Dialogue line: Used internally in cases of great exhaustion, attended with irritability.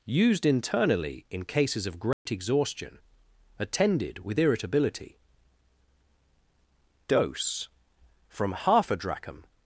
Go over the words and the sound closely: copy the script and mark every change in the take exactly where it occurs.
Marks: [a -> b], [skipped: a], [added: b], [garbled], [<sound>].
Used internally in cases of great [dropout] exhaustion, attended with irritability. [added: Dose from half a drachm]